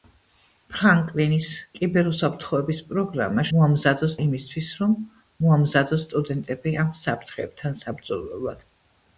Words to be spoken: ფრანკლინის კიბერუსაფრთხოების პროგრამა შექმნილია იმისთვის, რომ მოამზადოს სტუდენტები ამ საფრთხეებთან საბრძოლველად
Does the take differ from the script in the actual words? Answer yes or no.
yes